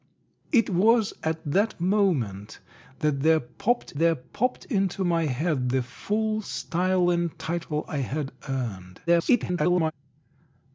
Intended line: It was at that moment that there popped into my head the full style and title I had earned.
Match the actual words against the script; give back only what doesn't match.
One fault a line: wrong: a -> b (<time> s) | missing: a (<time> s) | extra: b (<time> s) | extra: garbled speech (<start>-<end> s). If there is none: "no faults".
extra: there popped (4.0 s)
extra: garbled speech (9.1-9.9 s)